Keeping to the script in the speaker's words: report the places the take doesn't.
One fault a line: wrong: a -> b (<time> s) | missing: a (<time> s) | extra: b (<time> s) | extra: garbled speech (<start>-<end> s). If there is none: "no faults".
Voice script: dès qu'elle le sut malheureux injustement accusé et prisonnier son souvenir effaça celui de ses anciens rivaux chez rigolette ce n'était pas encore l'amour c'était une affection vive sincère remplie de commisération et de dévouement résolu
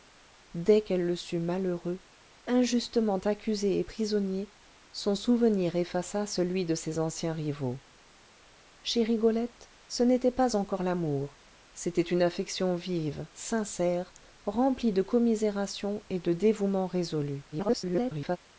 extra: garbled speech (17.5-18.4 s)